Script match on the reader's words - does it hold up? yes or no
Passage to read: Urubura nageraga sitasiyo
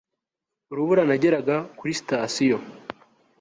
no